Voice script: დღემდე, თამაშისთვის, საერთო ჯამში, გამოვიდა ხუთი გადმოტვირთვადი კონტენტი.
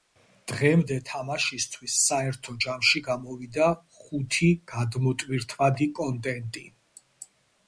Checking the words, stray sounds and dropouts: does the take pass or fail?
pass